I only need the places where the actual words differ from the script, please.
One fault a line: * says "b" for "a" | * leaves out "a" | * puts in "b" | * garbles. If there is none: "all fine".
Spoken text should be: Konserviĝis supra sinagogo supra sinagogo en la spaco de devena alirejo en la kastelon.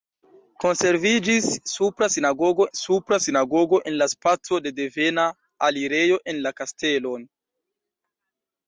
all fine